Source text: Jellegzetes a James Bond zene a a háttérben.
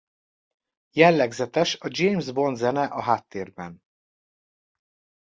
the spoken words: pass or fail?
fail